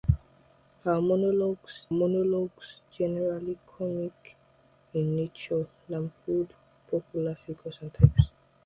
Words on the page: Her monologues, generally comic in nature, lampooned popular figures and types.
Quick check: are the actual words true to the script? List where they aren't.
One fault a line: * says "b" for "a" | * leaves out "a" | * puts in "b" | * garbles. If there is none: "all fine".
* puts in "monologues"